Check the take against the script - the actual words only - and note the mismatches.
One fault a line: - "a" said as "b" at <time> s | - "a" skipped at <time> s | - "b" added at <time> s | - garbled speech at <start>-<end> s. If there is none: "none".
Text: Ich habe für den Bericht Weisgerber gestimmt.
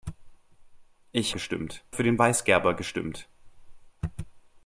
- "habe" said as "gestimmt" at 1.3 s
- "Bericht" skipped at 2.2 s